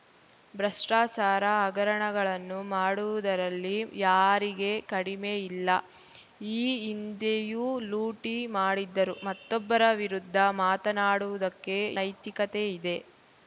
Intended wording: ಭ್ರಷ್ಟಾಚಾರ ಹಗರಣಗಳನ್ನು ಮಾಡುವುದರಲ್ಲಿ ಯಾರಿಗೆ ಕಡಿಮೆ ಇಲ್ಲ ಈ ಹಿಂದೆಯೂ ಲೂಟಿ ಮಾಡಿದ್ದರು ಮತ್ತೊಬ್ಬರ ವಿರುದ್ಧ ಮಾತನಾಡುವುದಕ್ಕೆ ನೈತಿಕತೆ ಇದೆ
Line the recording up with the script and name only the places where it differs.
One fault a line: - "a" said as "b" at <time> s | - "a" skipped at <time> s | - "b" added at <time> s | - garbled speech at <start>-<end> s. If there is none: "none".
none